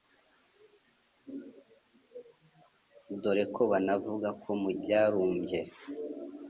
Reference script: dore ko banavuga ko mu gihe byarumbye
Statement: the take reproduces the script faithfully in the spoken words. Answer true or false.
false